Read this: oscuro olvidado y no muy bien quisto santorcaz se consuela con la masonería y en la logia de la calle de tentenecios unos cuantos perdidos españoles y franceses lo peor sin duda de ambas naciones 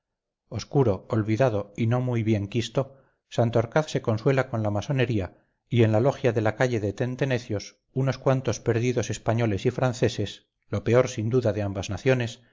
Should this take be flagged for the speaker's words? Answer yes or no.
no